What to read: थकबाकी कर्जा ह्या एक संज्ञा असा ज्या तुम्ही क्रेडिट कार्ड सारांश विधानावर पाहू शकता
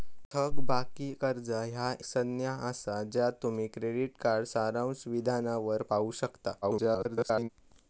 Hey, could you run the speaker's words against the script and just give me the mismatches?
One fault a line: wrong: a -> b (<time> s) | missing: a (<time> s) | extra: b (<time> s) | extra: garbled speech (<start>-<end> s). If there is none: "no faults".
missing: एक (1.9 s)
extra: garbled speech (6.6-7.5 s)